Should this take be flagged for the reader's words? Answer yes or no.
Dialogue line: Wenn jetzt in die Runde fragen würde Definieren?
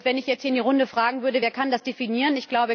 yes